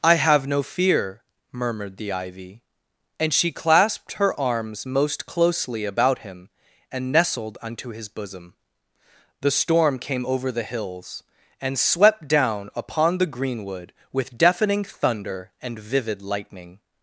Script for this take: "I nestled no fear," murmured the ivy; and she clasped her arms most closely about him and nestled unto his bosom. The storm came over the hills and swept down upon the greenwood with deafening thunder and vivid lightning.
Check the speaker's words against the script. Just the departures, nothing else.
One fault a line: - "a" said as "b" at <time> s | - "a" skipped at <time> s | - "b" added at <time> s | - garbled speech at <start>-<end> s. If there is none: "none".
- "nestled" said as "have" at 0.1 s